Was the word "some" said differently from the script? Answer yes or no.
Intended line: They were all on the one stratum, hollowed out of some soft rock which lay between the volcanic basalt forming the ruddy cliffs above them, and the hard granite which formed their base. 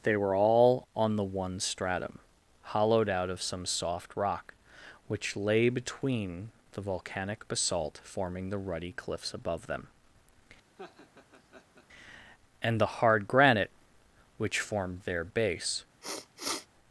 no